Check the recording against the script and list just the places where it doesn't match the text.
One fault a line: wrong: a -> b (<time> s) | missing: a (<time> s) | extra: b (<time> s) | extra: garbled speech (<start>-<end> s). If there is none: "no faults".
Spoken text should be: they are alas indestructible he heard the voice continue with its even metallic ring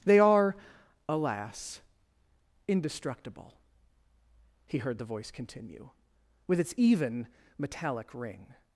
no faults